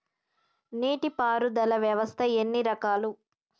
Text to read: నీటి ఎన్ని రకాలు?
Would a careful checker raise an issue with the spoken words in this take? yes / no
yes